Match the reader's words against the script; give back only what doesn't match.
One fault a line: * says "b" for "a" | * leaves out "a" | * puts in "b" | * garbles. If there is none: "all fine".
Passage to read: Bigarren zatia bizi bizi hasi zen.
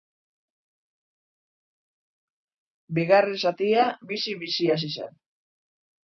all fine